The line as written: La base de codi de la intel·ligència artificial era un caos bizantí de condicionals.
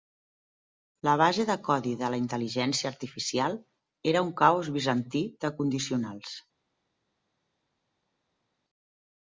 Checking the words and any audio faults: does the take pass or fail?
pass